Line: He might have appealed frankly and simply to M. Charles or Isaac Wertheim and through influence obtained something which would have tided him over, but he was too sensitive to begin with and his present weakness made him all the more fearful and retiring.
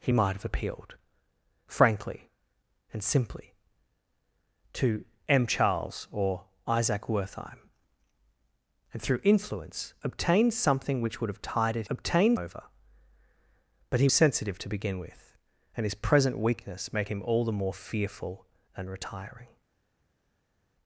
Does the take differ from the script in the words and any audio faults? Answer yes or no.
yes